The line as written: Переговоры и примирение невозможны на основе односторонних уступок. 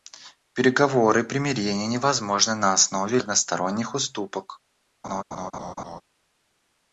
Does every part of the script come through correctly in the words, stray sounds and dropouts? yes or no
no